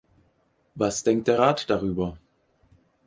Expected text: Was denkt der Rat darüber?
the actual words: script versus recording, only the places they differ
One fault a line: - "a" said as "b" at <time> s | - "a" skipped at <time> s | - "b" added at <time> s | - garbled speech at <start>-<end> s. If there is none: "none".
none